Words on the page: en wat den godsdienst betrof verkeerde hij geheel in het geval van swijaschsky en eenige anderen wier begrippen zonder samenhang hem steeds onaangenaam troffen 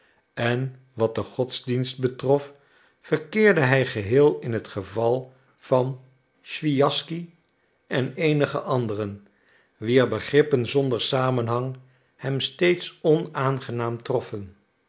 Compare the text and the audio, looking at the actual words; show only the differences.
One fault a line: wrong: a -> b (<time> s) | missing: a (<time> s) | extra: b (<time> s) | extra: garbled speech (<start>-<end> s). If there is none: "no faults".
no faults